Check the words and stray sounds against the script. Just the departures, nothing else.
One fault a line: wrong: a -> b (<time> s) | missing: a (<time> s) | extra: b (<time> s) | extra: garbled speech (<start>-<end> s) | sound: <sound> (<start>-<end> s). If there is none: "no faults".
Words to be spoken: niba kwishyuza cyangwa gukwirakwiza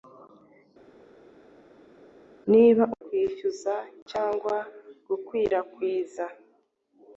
no faults